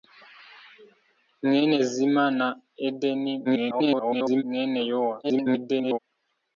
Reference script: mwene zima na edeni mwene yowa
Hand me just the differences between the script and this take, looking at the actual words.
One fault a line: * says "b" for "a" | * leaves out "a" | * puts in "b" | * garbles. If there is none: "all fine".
* garbles
* garbles